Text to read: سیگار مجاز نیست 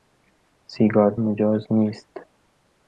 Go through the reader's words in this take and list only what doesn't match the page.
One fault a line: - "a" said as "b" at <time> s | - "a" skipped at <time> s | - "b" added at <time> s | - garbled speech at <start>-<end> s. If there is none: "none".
none